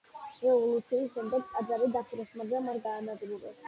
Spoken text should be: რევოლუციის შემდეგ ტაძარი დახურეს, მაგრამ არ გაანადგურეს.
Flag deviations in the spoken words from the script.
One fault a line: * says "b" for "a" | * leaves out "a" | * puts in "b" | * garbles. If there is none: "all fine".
all fine